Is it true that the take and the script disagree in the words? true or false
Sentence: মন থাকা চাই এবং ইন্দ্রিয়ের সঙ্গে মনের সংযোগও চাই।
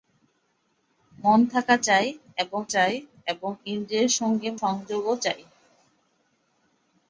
true